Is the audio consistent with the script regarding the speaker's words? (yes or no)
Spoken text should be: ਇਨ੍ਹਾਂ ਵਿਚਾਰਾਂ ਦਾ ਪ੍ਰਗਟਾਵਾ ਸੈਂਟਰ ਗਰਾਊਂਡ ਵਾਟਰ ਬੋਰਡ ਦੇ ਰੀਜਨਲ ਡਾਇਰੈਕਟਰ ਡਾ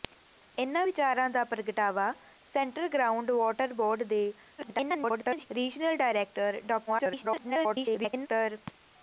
no